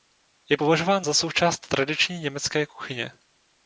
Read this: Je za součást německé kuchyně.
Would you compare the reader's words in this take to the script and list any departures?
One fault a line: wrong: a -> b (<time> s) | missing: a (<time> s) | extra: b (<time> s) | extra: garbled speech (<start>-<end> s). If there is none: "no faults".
extra: považován (0.5 s)
extra: tradiční (1.7 s)